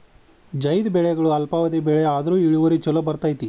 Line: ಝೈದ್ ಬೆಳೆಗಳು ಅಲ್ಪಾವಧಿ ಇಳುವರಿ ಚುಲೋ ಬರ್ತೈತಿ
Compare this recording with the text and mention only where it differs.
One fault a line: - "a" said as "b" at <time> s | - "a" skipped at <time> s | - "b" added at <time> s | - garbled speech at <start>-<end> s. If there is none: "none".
- "ಬೆಳೆ ಆದ್ರು" added at 1.8 s